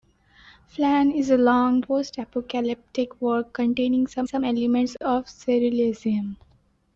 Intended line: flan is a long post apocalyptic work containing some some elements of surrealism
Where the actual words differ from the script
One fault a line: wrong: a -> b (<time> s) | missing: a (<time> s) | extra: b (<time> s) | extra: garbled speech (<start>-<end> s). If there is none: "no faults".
no faults